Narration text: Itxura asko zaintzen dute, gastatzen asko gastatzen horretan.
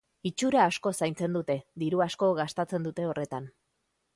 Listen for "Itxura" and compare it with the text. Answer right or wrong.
right